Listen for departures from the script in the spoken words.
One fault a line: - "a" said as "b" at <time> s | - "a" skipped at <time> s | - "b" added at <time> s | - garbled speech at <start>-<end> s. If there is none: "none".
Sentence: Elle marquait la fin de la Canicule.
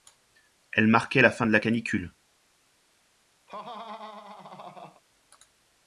none